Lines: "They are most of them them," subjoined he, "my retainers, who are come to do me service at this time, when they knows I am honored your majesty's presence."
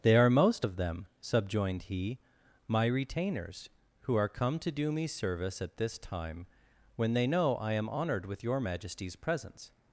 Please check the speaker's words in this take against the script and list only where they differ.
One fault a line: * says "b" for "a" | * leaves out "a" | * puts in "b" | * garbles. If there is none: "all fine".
* leaves out "them"
* says "know" for "knows"
* puts in "with"